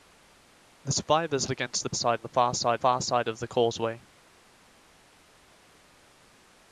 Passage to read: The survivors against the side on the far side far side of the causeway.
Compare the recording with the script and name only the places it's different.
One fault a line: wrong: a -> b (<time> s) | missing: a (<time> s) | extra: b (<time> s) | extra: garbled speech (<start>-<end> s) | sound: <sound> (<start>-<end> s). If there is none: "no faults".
no faults